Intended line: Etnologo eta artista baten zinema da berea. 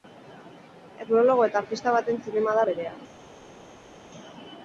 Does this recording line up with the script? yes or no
yes